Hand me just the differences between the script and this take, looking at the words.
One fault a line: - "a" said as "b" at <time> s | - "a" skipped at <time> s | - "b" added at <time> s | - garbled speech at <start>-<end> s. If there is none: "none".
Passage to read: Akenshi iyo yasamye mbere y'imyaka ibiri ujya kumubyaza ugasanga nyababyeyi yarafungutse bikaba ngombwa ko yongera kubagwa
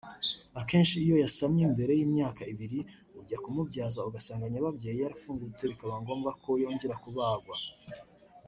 none